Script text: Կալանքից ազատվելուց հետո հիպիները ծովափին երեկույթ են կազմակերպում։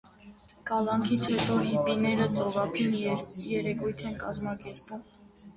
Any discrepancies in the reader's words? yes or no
yes